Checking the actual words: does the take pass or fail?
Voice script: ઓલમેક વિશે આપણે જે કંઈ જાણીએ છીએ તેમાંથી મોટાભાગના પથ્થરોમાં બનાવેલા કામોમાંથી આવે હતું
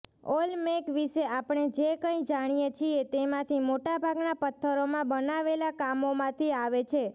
fail